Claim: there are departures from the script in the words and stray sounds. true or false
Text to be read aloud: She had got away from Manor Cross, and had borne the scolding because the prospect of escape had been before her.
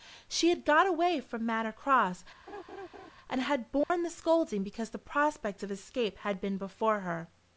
true